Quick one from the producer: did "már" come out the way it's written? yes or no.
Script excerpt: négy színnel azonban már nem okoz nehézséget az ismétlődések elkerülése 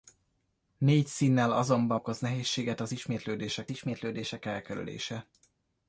no